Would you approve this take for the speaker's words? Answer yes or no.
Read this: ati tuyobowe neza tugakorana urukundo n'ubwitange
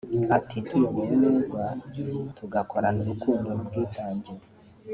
yes